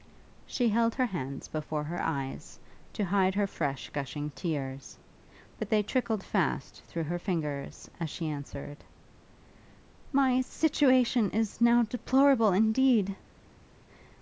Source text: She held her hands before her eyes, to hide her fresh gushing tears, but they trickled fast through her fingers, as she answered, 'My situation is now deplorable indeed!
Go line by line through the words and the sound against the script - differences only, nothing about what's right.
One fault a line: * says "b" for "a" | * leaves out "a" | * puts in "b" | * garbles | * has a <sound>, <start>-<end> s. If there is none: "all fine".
all fine